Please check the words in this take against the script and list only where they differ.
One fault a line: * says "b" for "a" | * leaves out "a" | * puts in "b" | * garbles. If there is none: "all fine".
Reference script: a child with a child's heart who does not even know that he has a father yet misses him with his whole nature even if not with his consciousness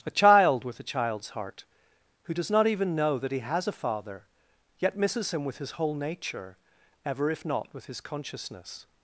* says "ever" for "even"